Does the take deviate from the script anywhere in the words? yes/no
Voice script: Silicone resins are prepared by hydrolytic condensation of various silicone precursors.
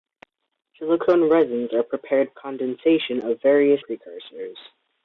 yes